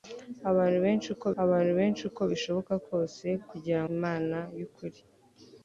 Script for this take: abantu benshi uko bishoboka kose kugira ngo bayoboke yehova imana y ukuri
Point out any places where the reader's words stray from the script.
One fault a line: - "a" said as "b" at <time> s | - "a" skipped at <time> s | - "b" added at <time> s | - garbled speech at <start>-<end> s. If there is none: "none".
- "abantu benshi uko" added at 1.4 s
- "ngo bayoboke yehova" skipped at 3.8 s